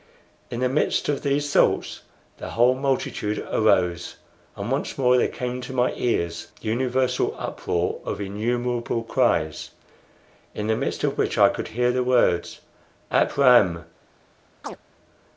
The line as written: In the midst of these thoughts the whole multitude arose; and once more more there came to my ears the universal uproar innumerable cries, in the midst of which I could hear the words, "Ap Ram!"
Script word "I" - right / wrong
right